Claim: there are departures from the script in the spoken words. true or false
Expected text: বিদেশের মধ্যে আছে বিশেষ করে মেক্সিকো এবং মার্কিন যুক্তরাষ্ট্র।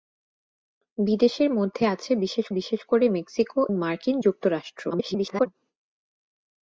true